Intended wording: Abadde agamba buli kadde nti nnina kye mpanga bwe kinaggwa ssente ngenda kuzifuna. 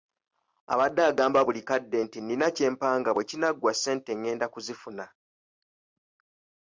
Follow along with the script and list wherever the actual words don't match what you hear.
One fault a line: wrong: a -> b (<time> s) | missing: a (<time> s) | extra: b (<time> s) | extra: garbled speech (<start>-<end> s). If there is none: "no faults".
no faults